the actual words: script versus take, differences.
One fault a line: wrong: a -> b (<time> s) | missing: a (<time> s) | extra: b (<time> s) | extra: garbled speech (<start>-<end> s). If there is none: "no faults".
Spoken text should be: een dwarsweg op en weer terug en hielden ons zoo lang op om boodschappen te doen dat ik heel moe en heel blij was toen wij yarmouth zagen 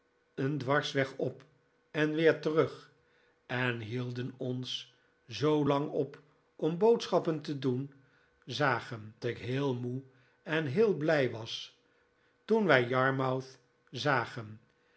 wrong: dat -> zagen (8.4 s)